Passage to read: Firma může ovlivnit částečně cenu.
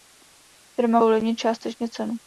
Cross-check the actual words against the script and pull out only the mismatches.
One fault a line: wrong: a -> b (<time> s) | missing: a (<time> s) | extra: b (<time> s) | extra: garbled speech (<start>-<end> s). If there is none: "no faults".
missing: může (1.0 s)